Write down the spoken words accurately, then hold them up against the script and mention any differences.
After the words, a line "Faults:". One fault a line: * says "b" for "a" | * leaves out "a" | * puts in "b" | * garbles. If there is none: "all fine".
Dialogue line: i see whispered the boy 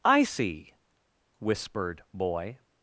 i see whispered boy
Faults:
* leaves out "the"